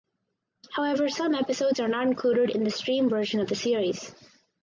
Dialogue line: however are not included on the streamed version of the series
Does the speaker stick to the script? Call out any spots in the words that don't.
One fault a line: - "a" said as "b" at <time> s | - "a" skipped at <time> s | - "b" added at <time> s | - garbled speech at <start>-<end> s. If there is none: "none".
- "some episodes" added at 1.1 s
- "on" said as "in" at 2.5 s